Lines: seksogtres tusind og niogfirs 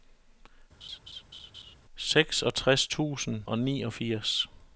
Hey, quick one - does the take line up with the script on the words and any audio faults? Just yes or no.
no